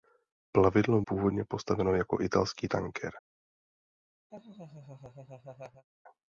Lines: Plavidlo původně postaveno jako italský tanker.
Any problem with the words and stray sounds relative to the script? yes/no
yes